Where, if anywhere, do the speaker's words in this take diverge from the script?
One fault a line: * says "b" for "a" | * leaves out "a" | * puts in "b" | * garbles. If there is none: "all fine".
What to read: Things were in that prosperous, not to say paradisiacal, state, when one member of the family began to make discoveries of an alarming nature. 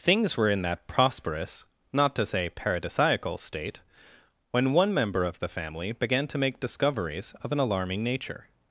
all fine